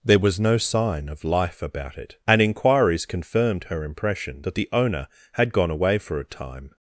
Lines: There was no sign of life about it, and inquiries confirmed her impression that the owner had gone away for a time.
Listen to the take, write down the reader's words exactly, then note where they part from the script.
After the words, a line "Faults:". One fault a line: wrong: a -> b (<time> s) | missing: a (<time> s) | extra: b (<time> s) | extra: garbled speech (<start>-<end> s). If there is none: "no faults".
There was no sign of life about it, and inquiries confirmed her impression that the owner had gone away for a time.
Faults:
no faults